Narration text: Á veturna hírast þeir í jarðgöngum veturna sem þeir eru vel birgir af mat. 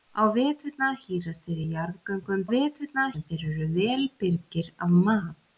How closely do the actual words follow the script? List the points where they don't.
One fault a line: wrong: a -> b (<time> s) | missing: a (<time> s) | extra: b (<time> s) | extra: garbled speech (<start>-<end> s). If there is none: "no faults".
no faults